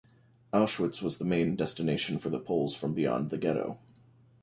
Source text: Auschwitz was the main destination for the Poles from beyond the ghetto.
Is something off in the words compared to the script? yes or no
no